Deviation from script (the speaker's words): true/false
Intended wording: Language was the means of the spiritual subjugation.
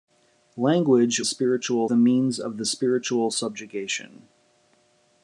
true